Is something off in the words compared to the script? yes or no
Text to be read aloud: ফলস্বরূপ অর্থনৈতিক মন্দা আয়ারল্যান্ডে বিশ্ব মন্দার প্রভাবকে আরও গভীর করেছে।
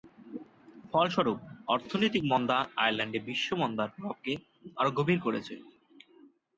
no